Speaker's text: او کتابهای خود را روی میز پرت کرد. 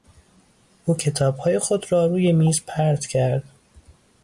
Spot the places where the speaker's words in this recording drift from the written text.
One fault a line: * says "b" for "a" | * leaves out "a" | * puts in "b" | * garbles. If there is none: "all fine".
all fine